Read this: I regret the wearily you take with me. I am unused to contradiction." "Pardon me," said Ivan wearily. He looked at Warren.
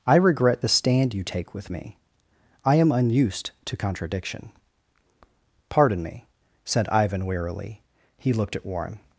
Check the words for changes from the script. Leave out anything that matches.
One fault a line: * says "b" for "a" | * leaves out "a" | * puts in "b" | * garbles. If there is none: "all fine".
* says "stand" for "wearily"